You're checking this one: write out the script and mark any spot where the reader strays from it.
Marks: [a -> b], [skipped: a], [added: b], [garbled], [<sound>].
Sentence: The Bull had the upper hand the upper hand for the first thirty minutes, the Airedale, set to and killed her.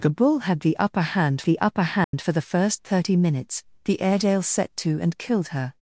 The Bull had the upper hand the upper hand [dropout] for the first thirty minutes, the Airedale, set to and killed her.